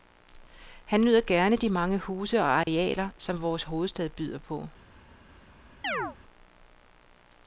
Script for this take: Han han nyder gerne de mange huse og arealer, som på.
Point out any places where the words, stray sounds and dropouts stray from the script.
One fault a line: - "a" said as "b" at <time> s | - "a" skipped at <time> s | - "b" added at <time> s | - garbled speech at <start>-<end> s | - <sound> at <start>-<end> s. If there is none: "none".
- "han" skipped at 1.0 s
- dropout at 2.6-2.7 s
- "vores hovedstad byder" added at 3.4 s
- chirp at 5.8-6.2 s